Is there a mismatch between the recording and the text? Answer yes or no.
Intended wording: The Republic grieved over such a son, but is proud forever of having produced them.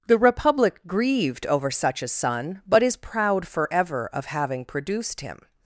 yes